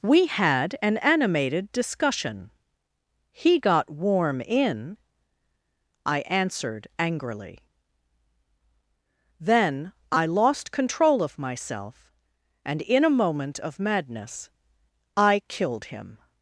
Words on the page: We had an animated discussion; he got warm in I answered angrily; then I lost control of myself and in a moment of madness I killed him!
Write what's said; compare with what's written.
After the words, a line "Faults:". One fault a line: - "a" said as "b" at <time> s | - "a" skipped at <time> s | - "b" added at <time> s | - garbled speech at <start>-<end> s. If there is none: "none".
We had an animated discussion; he got warm in I answered angrily; then I lost control of myself and in a moment of madness I killed him!
Faults:
none